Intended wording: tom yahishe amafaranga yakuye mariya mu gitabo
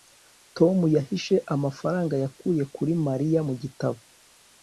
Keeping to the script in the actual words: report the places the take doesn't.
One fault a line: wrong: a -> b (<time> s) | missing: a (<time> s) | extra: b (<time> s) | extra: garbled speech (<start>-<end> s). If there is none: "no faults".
extra: kuri (2.8 s)